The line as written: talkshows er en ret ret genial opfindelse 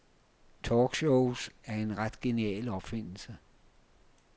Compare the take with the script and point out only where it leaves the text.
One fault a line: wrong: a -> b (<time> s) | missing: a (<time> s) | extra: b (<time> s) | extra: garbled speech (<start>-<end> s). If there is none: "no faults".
missing: ret (2.2 s)